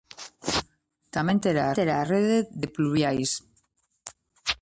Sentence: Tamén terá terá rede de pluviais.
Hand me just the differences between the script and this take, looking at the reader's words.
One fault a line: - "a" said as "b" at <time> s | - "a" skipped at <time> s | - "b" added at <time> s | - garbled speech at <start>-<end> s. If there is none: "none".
none